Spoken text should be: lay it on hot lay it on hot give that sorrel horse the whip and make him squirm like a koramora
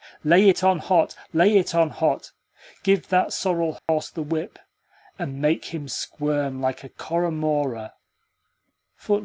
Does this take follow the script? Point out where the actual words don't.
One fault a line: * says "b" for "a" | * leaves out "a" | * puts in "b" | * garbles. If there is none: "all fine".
all fine